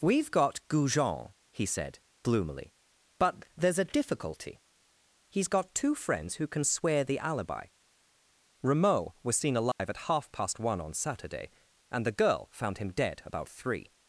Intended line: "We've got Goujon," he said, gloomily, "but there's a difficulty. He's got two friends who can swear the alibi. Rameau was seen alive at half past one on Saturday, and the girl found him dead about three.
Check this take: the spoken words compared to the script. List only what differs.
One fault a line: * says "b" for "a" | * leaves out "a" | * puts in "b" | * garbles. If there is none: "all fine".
all fine